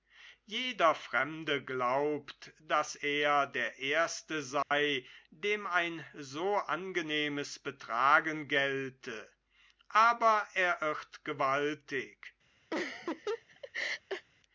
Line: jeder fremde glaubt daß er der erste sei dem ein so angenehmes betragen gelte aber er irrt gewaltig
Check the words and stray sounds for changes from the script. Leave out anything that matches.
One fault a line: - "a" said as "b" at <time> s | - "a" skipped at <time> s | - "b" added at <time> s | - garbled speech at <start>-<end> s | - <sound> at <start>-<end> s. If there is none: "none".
- dropout at 4.6-4.7 s
- laugh at 12.7-14.3 s